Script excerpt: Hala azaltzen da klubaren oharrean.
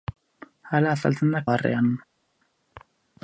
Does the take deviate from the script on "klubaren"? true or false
true